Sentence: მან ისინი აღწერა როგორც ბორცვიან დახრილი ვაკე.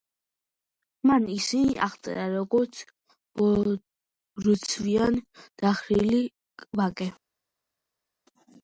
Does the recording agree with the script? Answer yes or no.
yes